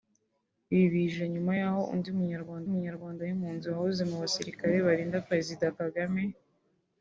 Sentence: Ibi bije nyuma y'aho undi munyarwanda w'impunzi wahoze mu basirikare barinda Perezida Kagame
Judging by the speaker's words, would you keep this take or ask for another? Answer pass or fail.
fail